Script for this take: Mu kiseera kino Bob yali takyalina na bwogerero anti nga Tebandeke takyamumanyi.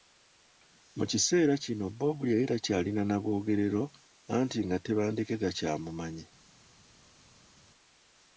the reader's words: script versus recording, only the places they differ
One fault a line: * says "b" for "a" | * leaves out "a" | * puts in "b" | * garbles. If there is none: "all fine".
all fine